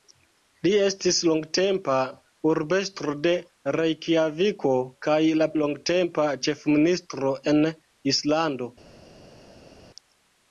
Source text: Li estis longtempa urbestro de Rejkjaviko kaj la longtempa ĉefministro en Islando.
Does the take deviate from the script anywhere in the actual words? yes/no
no